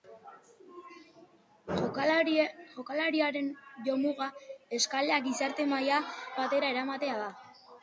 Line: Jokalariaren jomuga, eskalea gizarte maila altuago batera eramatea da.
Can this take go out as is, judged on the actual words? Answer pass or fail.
fail